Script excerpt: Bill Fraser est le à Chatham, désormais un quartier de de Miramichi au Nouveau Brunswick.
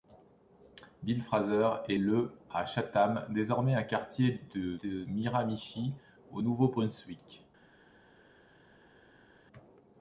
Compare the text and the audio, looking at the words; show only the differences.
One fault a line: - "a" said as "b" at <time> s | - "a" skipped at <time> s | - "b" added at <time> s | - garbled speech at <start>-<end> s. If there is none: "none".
none